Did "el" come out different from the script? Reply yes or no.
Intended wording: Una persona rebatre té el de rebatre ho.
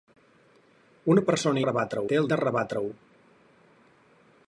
no